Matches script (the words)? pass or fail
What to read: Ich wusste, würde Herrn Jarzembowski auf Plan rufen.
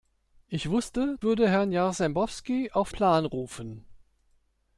pass